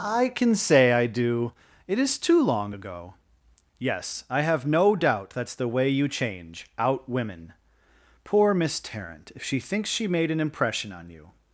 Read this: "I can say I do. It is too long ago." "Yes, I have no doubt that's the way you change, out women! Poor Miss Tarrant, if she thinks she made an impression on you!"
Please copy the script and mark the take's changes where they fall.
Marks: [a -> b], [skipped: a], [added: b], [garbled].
"I can say I do. It is too long ago." "Yes, I have no doubt that's the way you change, out women! Poor Miss Tarrant, if she thinks she made an impression on you!"